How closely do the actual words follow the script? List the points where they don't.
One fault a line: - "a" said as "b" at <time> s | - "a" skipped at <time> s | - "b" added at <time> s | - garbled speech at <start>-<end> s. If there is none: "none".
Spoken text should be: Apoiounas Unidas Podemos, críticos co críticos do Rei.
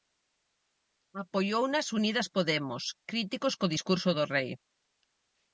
- "críticos" said as "discurso" at 3.7 s